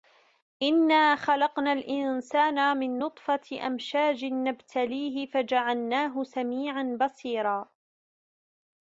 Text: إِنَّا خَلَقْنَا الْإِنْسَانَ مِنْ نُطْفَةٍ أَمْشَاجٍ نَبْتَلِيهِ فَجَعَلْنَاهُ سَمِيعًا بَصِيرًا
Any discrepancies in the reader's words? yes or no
no